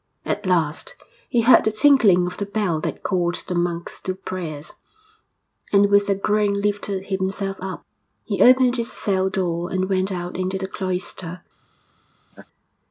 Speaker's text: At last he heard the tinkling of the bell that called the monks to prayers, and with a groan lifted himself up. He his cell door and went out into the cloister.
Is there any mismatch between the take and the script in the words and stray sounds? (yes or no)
yes